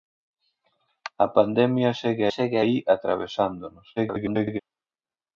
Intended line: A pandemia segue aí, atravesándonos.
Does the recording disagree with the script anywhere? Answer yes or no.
yes